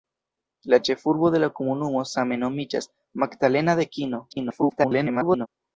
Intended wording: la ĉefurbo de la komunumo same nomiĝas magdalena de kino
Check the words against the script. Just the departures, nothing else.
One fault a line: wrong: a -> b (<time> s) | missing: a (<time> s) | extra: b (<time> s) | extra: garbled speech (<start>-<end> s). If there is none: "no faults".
extra: garbled speech (4.3-5.5 s)